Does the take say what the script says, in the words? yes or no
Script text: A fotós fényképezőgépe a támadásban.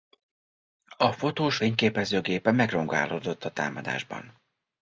no